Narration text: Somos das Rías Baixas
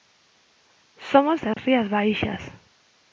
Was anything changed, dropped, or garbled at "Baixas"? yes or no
no